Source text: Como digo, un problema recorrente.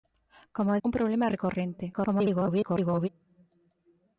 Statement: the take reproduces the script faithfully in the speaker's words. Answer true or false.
false